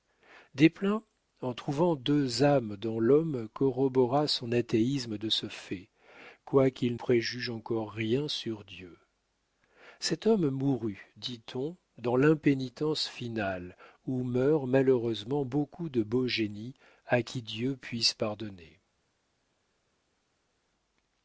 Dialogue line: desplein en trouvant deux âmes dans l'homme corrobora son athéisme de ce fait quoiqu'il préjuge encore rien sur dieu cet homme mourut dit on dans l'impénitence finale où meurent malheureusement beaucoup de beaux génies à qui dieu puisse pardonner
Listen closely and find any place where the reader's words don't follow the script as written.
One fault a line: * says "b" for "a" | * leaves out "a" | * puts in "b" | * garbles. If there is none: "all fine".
all fine